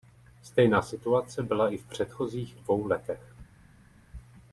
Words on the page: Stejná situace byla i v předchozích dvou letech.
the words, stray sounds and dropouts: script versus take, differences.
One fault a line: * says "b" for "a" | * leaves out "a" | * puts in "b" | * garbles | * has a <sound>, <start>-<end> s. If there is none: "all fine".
all fine